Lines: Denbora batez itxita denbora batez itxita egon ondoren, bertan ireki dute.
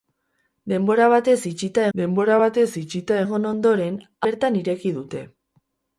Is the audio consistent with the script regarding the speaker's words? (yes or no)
yes